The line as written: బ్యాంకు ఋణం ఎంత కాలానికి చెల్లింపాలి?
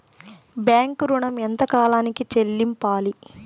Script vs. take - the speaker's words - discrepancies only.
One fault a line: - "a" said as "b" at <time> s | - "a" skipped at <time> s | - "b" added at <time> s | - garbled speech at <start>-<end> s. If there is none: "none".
none